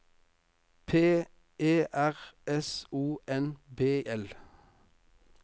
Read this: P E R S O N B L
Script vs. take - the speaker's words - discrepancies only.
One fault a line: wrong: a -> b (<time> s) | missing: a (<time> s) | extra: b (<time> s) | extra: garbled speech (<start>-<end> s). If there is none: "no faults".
no faults